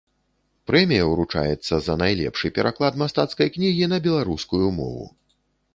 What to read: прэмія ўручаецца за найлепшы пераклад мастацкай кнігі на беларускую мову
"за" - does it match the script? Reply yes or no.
yes